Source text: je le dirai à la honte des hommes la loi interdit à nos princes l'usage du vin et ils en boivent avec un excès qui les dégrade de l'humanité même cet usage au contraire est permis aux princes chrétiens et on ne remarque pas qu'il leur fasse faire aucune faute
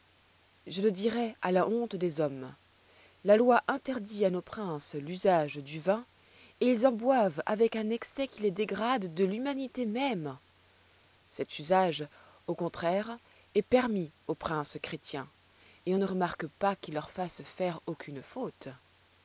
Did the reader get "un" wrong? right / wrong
right